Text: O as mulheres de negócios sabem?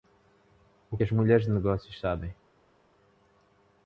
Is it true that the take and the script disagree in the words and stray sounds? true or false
false